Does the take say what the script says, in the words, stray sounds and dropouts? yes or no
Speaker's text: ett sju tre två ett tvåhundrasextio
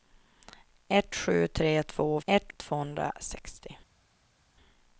yes